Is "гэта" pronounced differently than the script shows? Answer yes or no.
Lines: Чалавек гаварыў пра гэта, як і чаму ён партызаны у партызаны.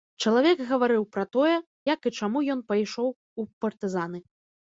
yes